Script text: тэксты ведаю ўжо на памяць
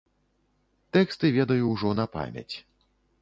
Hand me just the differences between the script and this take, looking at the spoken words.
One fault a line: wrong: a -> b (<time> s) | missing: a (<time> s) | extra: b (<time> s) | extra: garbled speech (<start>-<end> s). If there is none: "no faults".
no faults